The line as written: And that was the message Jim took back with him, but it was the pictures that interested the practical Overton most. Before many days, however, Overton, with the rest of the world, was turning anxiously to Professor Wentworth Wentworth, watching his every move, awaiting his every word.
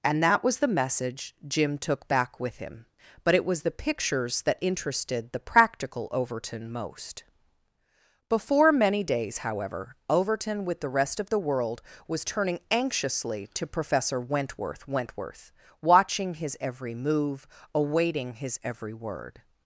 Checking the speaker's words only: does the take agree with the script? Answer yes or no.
yes